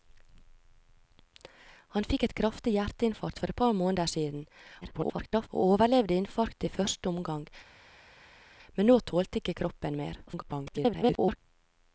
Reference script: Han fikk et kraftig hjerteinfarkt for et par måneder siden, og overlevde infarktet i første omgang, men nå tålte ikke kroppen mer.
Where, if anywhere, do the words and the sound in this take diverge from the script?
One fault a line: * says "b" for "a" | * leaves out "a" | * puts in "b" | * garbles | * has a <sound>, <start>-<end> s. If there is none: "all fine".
* garbles
* garbles